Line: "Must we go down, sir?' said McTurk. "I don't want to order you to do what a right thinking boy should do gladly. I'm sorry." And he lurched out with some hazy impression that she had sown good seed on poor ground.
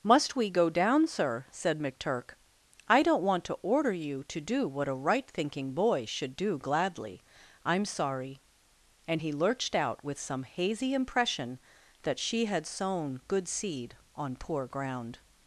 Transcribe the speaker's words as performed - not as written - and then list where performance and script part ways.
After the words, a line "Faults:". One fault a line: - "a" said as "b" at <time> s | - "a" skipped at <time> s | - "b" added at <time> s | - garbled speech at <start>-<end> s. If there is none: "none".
"Must we go down, sir?' said McTurk. "I don't want to order you to do what a right thinking boy should do gladly. I'm sorry." And he lurched out with some hazy impression that she had sown good seed on poor ground.
Faults:
none